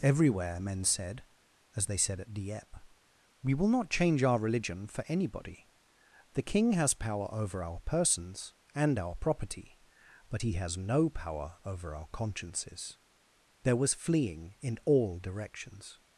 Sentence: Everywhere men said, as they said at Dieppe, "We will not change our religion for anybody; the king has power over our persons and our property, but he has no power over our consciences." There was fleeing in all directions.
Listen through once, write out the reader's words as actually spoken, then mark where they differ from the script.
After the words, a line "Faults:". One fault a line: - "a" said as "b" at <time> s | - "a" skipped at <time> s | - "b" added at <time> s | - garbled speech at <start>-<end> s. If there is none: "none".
Everywhere men said, as they said at Dieppe, "We will not change our religion for anybody; the king has power over our persons and our property, but he has no power over our consciences." There was fleeing in all directions.
Faults:
none